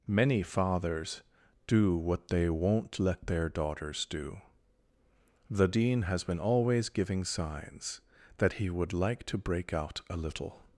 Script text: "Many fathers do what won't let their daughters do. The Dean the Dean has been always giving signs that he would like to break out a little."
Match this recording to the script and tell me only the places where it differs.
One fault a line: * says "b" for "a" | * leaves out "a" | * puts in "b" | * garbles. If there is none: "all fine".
* puts in "they"
* leaves out "the Dean"